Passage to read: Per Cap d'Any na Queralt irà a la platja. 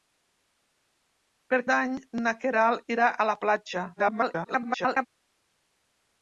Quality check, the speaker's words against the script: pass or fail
fail